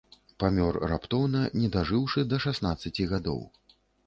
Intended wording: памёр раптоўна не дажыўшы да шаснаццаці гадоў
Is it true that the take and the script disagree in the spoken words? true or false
false